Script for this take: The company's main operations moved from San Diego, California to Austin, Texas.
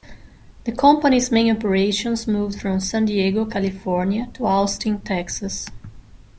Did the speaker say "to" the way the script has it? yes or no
yes